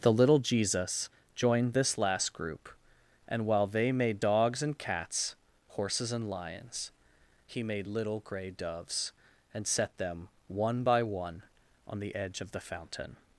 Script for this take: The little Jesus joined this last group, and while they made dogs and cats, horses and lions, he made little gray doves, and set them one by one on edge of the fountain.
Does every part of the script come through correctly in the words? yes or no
no